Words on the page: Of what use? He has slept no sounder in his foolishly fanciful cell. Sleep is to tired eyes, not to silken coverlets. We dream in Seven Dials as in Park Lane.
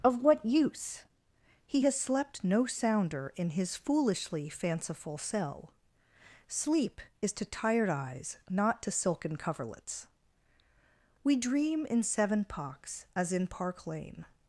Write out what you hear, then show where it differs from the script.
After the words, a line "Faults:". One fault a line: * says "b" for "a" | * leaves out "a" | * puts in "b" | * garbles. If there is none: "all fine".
Of what use? He has slept no sounder in his foolishly fanciful cell. Sleep is to tired eyes, not to silken coverlets. We dream in Seven Pocks as in Park Lane.
Faults:
* says "Pocks" for "Dials"